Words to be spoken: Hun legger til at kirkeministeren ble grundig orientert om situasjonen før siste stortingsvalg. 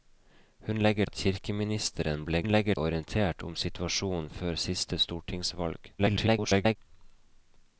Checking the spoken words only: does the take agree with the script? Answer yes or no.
no